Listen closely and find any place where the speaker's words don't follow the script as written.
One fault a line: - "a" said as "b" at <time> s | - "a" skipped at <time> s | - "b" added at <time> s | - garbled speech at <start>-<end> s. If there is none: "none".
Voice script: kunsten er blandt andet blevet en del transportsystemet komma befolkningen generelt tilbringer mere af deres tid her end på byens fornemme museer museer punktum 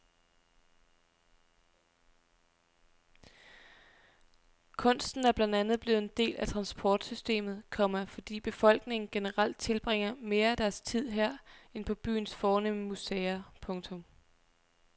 - "af" added at 6.3 s
- "fordi" added at 8.0 s
- "museer" skipped at 13.5 s